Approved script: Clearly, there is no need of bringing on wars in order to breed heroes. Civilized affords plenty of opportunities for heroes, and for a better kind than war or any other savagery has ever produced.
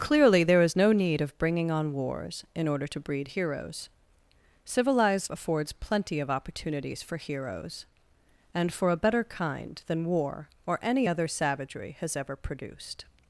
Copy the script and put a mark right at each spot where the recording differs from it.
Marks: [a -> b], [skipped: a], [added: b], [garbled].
Clearly, there is no need of bringing on wars in order to breed heroes. Civilized affords plenty of opportunities for heroes, and for a better kind than war or any other savagery has ever produced.